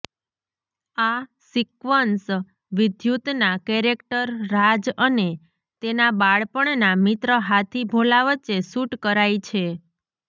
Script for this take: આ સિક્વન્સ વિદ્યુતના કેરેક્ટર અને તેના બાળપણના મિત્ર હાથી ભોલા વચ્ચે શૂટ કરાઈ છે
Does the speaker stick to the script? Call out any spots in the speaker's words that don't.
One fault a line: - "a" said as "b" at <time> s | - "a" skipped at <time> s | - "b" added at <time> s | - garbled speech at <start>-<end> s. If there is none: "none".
- "રાજ" added at 4.5 s